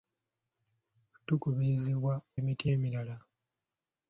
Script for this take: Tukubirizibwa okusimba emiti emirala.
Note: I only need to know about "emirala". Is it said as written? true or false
true